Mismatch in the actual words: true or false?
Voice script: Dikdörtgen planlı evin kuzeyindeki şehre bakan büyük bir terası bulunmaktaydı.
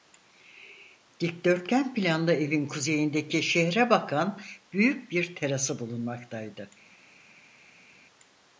false